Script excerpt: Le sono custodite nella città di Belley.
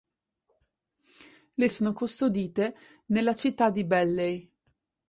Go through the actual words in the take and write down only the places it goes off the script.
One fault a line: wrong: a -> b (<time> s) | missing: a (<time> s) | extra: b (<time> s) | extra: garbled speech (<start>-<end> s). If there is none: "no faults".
no faults